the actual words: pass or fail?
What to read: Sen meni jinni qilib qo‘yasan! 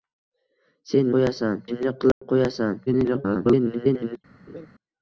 fail